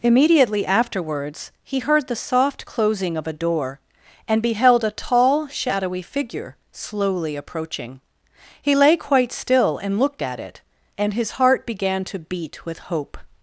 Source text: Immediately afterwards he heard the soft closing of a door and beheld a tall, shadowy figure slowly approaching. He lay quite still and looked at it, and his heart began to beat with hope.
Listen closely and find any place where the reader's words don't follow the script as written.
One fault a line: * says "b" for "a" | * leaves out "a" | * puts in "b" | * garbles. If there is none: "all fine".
all fine